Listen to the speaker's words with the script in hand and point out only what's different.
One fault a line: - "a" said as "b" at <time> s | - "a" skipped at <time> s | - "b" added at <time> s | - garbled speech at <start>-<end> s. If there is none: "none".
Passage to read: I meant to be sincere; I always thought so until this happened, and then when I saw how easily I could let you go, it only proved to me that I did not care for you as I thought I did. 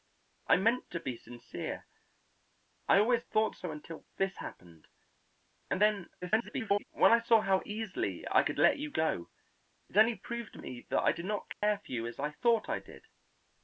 - garbled speech at 6.2-6.8 s